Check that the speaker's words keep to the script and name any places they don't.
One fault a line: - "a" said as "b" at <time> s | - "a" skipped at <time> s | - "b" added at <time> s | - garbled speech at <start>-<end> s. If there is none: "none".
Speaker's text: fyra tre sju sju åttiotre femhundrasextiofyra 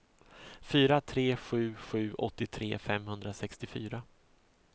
none